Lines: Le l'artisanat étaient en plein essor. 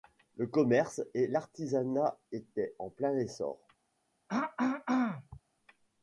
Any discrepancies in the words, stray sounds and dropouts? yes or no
yes